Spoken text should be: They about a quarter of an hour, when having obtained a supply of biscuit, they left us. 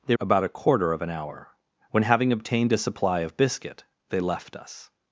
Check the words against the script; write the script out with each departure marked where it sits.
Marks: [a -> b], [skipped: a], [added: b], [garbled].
They about a quarter of an hour, when having obtained a supply of biscuit, they left us.